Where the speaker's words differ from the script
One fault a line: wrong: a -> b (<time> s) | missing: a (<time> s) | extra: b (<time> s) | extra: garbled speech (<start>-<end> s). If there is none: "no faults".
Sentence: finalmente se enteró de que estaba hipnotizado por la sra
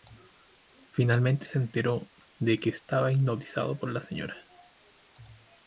no faults